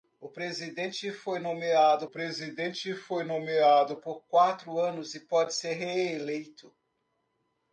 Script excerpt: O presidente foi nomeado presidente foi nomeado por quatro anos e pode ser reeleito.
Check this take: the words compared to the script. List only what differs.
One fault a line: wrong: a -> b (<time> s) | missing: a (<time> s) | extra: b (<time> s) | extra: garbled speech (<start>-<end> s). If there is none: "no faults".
no faults